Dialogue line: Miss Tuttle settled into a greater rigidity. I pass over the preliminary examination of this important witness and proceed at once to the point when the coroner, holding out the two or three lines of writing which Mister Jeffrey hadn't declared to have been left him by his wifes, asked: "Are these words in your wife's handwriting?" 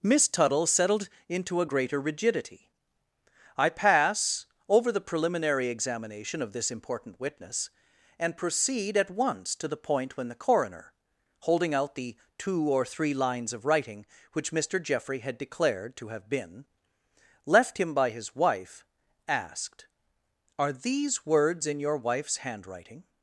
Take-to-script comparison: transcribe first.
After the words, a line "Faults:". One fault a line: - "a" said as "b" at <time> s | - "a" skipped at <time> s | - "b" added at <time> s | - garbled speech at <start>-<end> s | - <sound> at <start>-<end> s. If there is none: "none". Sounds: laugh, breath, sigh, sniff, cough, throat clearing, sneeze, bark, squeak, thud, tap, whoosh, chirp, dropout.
Miss Tuttle settled into a greater rigidity. I pass over the preliminary examination of this important witness and proceed at once to the point when the coroner, holding out the two or three lines of writing which Mister Jeffrey had declared to have been left him by his wife, asked: "Are these words in your wife's handwriting?"
Faults:
- "hadn't" said as "had" at 15.2 s
- "wifes" said as "wife" at 18.4 s